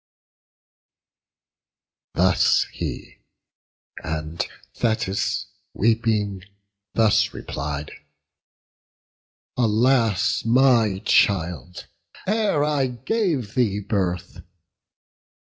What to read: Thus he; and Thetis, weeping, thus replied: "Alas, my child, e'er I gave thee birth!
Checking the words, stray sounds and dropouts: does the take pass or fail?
pass